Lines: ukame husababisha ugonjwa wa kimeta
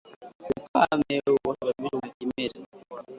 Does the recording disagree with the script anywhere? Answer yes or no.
yes